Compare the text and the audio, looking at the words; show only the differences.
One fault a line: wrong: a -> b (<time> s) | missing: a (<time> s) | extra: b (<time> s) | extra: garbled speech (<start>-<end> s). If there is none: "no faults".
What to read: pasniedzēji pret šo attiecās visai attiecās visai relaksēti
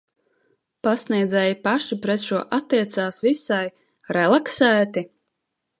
extra: paši (1.7 s)
missing: attiecās visai (3.6 s)